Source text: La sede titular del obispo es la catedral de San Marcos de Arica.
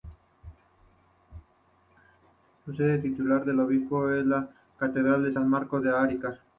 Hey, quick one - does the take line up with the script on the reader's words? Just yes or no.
yes